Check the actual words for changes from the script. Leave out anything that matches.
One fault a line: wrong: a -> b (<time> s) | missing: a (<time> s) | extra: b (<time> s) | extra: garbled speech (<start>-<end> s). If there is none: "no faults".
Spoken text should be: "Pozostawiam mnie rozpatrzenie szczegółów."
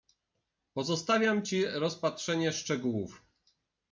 wrong: mnie -> ci (1.4 s)